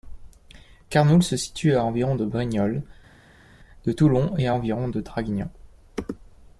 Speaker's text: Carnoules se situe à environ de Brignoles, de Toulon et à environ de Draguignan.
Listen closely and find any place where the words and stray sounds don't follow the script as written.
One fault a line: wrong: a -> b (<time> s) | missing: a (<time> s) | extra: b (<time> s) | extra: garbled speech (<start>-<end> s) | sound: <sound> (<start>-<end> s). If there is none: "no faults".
no faults